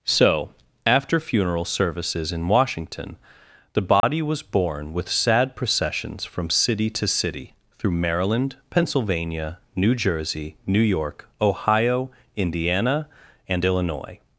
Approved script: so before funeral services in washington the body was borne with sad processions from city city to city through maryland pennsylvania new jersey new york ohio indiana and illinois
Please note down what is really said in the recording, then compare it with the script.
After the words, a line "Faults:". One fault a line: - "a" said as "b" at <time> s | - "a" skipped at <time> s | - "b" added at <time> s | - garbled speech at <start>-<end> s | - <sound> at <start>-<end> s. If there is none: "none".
so after funeral services in washington the body was borne with sad processions from city to city through maryland pennsylvania new jersey new york ohio indiana and illinois
Faults:
- "before" said as "after" at 0.8 s
- dropout at 4.0-4.0 s
- "city" skipped at 6.9 s